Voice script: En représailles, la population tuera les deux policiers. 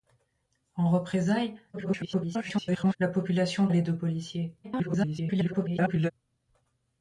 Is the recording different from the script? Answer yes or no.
yes